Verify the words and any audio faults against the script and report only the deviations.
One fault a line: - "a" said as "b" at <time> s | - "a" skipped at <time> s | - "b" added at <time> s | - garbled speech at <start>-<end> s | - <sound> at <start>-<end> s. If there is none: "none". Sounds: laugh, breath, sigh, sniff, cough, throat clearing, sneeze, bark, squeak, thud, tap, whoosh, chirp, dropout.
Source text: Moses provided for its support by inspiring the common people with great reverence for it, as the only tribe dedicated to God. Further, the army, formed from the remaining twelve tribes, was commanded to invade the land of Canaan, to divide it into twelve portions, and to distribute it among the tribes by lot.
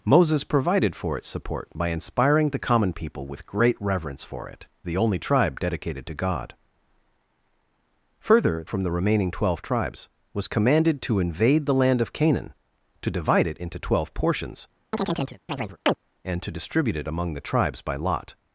- "as" skipped at 4.7 s
- "the army formed" skipped at 8.7 s
- chirp at 14.9-16.0 s